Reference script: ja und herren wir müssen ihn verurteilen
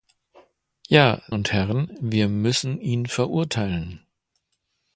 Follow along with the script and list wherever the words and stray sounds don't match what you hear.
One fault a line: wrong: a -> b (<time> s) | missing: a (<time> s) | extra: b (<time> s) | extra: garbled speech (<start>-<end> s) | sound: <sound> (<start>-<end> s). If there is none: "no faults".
no faults